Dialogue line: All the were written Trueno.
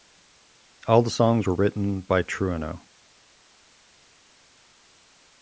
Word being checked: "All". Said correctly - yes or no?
yes